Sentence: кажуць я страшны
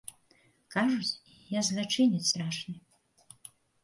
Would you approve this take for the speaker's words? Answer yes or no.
no